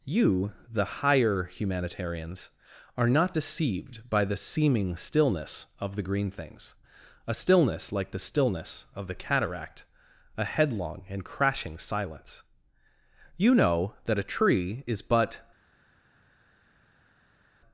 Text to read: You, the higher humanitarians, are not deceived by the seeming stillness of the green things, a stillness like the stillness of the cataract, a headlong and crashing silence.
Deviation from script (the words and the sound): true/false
true